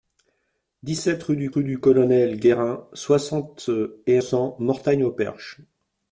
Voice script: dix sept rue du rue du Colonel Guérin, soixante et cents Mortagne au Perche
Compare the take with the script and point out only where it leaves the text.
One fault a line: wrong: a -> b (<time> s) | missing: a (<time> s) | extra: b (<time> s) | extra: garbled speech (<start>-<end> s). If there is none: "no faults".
no faults